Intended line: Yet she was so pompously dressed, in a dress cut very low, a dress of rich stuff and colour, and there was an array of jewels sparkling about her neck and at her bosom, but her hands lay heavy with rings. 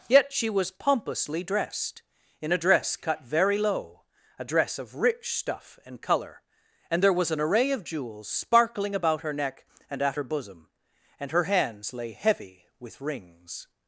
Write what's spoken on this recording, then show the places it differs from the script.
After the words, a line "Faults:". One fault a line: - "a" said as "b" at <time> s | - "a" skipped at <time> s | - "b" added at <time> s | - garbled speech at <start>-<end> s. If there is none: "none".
Yet she was pompously dressed, in a dress cut very low, a dress of rich stuff and colour, and there was an array of jewels sparkling about her neck and at her bosom, and her hands lay heavy with rings.
Faults:
- "so" skipped at 0.7 s
- "but" said as "and" at 11.2 s